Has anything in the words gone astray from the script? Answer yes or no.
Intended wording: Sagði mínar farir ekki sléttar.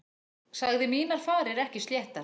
no